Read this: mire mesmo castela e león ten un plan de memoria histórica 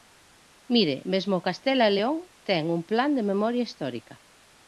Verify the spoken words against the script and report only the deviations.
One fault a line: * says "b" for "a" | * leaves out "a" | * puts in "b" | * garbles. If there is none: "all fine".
all fine